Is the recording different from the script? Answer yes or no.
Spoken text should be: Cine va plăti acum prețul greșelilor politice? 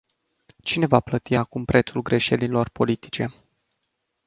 no